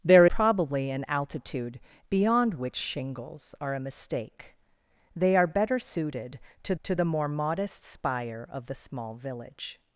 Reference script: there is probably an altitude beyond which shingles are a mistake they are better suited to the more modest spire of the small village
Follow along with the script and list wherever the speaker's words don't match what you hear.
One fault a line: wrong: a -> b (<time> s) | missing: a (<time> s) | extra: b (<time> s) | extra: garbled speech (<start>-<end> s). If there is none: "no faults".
missing: is (0.2 s)
extra: to (6.8 s)